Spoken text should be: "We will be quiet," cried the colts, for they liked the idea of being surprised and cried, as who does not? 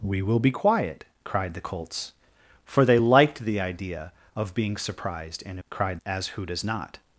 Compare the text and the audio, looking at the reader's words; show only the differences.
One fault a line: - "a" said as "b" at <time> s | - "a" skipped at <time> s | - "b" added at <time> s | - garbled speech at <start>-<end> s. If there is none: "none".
none